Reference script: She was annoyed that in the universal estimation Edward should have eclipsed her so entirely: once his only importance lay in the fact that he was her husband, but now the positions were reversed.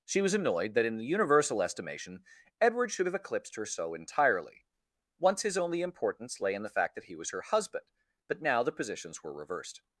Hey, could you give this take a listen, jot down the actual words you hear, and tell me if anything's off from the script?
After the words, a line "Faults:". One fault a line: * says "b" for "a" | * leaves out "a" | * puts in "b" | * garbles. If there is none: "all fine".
She was annoyed that in the universal estimation Edward should have eclipsed her so entirely: once his only importance lay in the fact that he was her husband, but now the positions were reversed.
Faults:
all fine